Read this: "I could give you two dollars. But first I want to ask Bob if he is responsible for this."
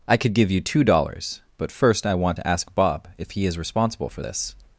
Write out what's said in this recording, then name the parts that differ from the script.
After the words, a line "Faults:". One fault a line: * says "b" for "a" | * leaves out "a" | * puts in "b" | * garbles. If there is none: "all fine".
"I could give you two dollars. But first I want to ask Bob if he is responsible for this."
Faults:
all fine